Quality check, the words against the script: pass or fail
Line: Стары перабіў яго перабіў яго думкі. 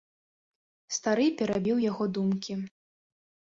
fail